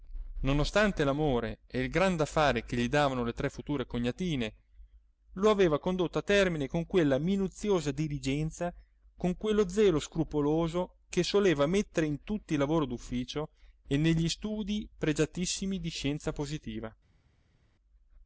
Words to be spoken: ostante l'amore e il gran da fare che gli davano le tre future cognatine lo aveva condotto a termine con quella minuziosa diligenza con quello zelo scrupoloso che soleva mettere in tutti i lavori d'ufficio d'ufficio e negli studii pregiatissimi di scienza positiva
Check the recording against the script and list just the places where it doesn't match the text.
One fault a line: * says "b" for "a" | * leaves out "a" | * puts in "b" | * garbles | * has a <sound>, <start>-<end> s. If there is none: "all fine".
* leaves out "d'ufficio"